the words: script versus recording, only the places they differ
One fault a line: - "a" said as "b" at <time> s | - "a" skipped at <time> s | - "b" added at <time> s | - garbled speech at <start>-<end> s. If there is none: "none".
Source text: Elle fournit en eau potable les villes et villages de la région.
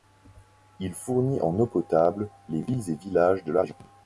- "Elle" said as "Il" at 0.8 s